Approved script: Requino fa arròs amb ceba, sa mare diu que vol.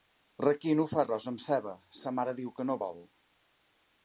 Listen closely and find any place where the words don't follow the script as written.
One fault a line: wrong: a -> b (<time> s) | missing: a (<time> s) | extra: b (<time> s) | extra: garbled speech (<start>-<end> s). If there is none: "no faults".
extra: no (2.7 s)